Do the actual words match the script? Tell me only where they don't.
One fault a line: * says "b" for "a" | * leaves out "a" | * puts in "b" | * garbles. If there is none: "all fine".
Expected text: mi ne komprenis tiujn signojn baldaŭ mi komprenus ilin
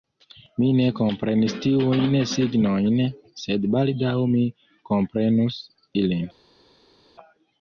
* puts in "sed"